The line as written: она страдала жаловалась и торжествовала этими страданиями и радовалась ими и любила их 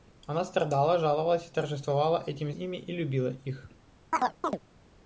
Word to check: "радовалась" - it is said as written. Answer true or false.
false